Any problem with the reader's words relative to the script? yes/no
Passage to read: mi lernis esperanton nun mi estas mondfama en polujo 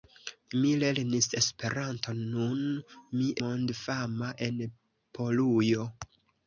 yes